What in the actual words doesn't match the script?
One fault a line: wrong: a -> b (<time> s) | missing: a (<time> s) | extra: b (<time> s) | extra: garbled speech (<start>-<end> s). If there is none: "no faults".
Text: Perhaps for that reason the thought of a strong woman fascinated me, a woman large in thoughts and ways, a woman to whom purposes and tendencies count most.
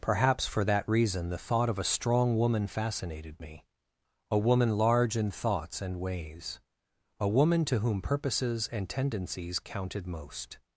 wrong: count -> counted (9.6 s)